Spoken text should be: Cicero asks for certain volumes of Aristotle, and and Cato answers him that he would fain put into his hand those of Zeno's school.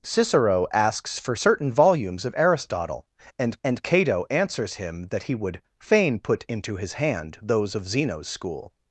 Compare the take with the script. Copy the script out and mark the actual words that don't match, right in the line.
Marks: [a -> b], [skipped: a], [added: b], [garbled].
Cicero asks for certain volumes of Aristotle, and and Cato answers him that he would fain put into his hand those of Zeno's school.